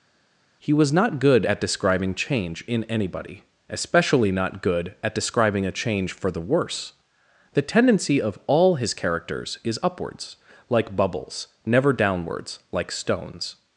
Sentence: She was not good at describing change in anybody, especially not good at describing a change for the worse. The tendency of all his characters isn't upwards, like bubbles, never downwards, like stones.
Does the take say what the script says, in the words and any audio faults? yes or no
no